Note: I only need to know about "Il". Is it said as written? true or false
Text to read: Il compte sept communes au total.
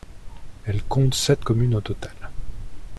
false